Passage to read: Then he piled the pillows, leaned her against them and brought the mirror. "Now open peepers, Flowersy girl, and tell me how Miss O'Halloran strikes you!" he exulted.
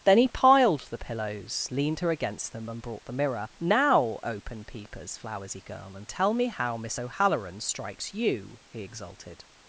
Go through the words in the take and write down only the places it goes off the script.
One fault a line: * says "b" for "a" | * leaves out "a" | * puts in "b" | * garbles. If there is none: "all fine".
all fine